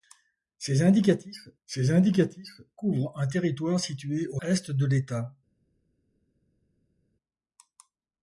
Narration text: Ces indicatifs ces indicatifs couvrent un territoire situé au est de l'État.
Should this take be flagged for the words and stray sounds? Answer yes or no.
no